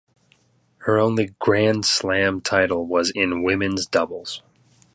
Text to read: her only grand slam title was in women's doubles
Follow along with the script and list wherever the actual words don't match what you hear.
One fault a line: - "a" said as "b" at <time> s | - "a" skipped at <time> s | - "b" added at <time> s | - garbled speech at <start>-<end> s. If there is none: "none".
none